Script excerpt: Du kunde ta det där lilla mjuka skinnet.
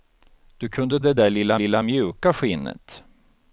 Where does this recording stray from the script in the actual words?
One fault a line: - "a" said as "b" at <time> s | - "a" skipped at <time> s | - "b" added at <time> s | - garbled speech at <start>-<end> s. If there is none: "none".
- "ta" skipped at 1.0 s
- "lilla" added at 1.5 s